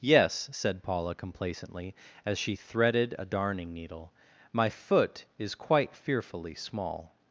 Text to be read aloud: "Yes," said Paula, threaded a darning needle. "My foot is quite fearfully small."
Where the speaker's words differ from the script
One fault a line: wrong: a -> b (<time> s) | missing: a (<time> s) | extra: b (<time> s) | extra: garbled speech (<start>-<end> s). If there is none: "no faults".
extra: complacently as she (1.1 s)